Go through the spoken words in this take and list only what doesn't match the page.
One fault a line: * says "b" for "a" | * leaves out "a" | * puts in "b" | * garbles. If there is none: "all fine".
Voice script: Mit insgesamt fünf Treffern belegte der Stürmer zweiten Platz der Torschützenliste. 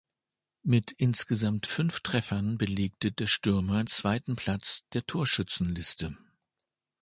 all fine